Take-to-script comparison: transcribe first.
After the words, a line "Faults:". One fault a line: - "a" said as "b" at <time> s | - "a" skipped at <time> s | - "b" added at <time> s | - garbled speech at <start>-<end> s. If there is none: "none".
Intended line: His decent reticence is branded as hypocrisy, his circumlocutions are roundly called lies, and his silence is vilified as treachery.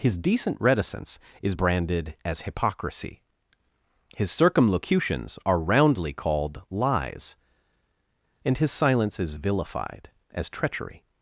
His decent reticence is branded as hypocrisy, his circumlocutions are roundly called lies, and his silence is vilified as treachery.
Faults:
none